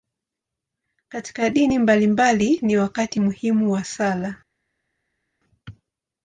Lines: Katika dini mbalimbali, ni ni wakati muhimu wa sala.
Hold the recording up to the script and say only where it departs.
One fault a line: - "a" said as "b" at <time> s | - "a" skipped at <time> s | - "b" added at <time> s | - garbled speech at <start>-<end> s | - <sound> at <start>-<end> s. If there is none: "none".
- "ni" skipped at 2.8 s